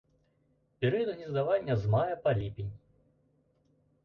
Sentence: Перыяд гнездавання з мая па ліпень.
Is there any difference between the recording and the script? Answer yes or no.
no